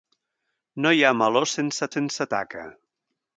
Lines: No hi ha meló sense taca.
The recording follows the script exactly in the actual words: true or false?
false